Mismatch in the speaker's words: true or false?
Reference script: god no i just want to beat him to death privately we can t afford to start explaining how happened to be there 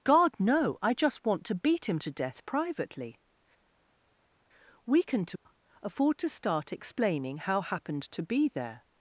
false